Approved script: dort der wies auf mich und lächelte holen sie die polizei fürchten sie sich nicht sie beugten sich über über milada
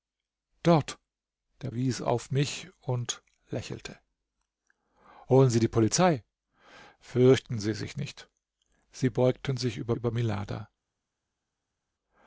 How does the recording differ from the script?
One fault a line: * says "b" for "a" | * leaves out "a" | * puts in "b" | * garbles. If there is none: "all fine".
all fine